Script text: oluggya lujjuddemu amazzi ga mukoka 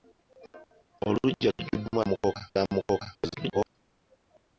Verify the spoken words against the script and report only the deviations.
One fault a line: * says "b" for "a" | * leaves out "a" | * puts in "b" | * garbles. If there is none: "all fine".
* says "mukoka" for "amazzi"
* garbles